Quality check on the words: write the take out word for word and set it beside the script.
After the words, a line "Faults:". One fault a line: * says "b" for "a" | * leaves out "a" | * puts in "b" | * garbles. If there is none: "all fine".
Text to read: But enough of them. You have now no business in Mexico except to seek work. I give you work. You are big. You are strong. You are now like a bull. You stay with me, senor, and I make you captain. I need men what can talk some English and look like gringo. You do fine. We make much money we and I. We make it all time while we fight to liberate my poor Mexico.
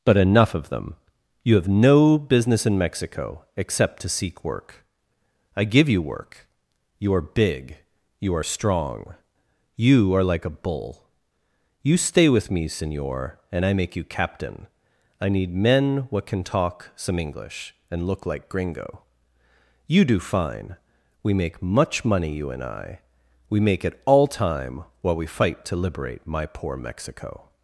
But enough of them. You have no business in Mexico except to seek work. I give you work. You are big. You are strong. You are like a bull. You stay with me, senor, and I make you captain. I need men what can talk some English and look like gringo. You do fine. We make much money you and I. We make it all time while we fight to liberate my poor Mexico.
Faults:
* leaves out "now"
* leaves out "now"
* says "you" for "we"